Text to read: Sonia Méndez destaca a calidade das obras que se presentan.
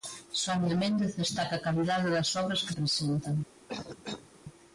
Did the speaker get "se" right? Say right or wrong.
wrong